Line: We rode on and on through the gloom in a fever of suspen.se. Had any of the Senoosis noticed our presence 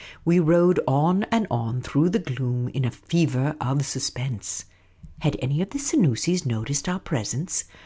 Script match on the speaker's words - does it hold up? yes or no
yes